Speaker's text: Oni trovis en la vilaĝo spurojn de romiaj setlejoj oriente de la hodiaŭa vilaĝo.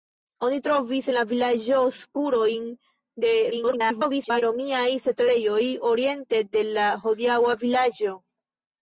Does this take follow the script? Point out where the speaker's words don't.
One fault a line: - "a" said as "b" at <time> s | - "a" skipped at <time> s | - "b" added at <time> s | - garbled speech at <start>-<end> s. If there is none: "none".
- garbled speech at 3.5-4.4 s